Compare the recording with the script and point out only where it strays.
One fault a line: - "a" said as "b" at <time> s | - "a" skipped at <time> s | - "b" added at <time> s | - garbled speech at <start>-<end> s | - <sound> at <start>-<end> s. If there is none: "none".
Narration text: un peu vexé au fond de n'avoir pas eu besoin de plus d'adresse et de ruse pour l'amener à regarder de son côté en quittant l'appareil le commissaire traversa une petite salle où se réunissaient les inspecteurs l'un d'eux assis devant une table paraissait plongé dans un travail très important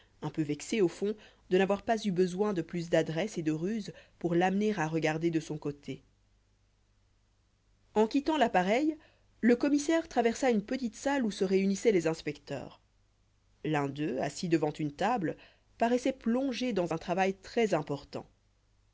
none